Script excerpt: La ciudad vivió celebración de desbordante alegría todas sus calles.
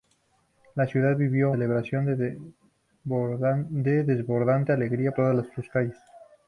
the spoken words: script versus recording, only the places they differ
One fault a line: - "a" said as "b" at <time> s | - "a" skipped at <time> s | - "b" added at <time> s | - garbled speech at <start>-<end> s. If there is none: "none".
none